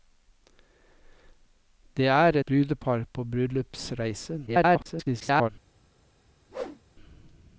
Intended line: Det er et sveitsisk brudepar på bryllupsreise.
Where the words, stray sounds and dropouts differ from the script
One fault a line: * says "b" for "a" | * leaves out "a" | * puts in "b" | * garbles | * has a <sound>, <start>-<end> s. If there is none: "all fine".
* leaves out "et sveitsisk"
* garbles
* has a whoosh, 6.5-6.8 s